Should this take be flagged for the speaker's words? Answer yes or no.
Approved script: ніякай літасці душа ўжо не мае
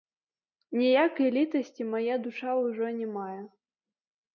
yes